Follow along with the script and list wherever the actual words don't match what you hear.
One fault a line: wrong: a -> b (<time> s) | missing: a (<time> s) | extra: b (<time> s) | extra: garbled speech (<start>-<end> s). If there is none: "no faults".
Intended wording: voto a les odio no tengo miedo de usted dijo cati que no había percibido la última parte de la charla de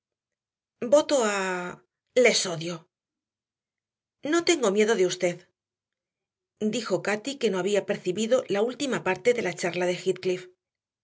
no faults